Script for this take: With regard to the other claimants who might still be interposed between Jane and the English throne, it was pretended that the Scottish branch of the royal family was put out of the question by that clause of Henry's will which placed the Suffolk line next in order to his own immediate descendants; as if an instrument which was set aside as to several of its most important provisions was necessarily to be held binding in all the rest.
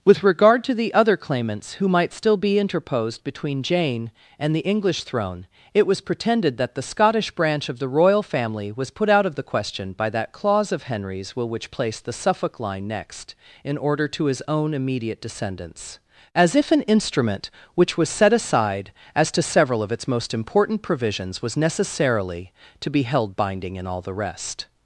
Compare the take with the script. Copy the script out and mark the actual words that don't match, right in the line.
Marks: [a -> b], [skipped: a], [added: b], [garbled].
With regard to the other claimants who might still be interposed between Jane and the English throne, it was pretended that the Scottish branch of the royal family was put out of the question by that clause of Henry's will which placed the Suffolk line next in order to his own immediate descendants; as if an instrument which was set aside as to several of its most important provisions was necessarily to be held binding in all the rest.